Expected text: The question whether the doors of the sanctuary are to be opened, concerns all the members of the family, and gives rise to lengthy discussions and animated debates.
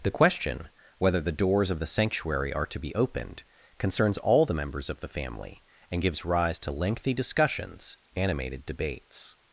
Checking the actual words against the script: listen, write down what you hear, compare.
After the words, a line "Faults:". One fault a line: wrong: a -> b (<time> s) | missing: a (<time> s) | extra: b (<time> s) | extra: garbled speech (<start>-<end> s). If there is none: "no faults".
The question whether the doors of the sanctuary are to be opened, concerns all the members of the family, and gives rise to lengthy discussions animated debates.
Faults:
missing: and (8.0 s)